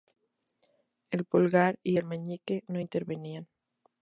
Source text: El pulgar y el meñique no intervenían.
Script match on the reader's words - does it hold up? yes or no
yes